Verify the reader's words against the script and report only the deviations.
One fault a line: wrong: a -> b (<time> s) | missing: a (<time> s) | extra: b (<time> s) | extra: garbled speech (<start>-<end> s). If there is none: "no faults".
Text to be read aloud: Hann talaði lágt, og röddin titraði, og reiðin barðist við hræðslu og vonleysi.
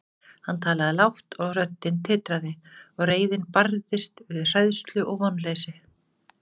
no faults